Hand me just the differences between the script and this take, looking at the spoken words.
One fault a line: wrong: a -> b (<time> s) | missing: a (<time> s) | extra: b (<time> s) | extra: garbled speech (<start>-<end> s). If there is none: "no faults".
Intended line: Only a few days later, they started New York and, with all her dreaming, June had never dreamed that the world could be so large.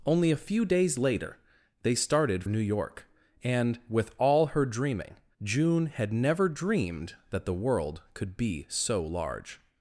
no faults